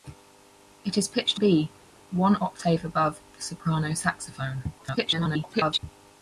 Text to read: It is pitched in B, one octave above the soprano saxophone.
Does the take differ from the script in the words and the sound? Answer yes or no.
yes